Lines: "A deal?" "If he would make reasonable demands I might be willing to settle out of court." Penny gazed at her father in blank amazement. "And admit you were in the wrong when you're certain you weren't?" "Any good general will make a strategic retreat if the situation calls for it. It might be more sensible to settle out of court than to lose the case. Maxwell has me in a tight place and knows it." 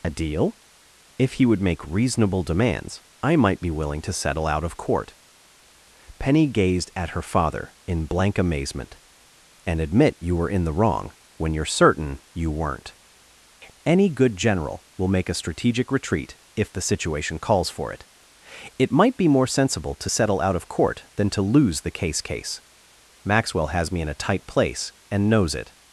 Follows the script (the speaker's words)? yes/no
no